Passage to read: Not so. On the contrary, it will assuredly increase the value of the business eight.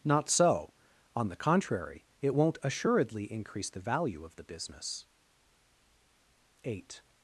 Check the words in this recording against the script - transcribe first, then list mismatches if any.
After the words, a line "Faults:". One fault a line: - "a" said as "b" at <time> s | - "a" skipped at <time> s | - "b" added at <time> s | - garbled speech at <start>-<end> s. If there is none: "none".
Not so. On the contrary, it won't assuredly increase the value of the business eight.
Faults:
- "will" said as "won't" at 2.3 s